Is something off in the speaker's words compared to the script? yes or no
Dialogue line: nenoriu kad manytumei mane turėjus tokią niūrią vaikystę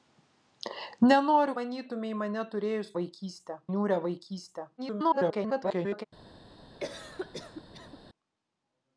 yes